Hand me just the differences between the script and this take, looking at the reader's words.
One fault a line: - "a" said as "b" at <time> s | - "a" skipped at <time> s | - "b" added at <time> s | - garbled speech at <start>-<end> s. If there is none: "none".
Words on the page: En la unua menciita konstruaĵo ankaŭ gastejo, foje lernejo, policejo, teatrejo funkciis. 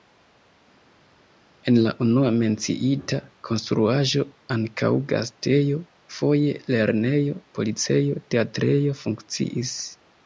none